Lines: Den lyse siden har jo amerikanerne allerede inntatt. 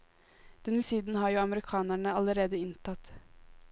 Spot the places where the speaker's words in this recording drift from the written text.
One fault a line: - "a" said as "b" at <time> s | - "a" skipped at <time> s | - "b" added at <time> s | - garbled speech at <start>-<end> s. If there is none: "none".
- "lyse" skipped at 0.8 s